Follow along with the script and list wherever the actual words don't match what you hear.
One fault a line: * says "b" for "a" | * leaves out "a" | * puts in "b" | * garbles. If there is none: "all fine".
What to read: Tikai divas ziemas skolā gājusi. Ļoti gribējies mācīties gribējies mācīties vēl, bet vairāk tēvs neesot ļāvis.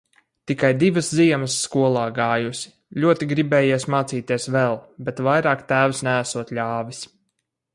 * leaves out "gribējies mācīties"